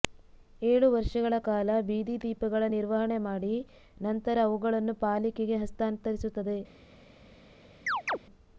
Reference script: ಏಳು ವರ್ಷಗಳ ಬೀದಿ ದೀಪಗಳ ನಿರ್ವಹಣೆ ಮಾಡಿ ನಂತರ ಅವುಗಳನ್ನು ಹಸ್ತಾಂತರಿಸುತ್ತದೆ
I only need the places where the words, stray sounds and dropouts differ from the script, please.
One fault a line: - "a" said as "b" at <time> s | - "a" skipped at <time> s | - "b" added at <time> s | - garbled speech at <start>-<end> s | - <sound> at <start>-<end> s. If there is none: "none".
- "ಕಾಲ" added at 1.4 s
- "ಪಾಲಿಕೆಗೆ" added at 5.0 s
- chirp at 7.9-8.2 s